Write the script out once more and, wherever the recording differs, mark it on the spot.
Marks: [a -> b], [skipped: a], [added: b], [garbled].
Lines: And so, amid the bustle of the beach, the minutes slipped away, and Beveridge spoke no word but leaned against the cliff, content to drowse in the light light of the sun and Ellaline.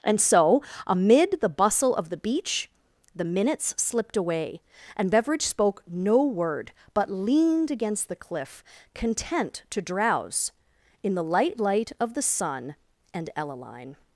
And so, amid the bustle of the beach, the minutes slipped away, and Beveridge spoke no word but leaned against the cliff, content to drowse in the light light of the sun and Ellaline.